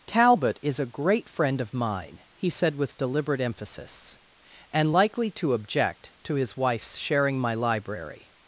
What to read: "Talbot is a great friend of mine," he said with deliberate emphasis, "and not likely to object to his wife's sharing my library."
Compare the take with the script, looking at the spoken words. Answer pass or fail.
fail